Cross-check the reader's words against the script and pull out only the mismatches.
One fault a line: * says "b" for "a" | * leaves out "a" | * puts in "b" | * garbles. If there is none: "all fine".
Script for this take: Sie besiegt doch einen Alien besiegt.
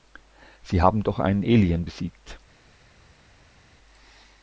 * says "haben" for "besiegt"